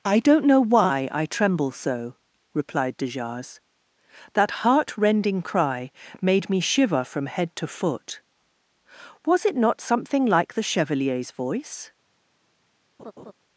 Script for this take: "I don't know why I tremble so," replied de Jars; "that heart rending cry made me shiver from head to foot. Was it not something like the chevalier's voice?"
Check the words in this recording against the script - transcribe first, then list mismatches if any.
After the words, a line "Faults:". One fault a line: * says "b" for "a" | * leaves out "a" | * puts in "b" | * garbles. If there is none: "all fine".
"I don't know why I tremble so," replied de Jars; "that heart rending cry made me shiver from head to foot. Was it not something like the chevalier's voice?"
Faults:
all fine